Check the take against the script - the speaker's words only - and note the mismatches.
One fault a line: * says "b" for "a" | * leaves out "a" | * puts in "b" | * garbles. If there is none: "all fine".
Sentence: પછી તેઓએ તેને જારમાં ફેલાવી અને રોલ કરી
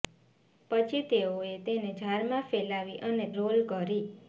all fine